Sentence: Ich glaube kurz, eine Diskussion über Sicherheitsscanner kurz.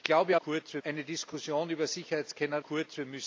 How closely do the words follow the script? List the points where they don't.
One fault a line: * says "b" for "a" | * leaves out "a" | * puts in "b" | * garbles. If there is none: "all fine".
all fine